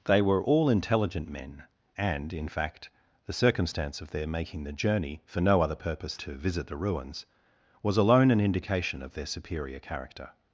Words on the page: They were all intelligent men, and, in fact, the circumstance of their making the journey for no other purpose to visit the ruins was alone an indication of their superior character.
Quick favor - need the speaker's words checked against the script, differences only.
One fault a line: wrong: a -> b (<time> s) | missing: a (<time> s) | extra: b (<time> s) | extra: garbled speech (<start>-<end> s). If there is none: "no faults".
no faults